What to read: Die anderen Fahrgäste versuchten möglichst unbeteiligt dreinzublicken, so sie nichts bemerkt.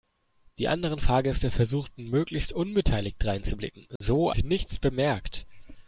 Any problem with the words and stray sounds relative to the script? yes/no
yes